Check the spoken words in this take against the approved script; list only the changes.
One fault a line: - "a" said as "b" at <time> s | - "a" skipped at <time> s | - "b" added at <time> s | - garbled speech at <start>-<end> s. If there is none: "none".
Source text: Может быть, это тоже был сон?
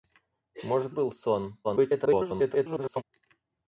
- "быть это тоже" skipped at 0.9 s
- garbled speech at 1.6-3.0 s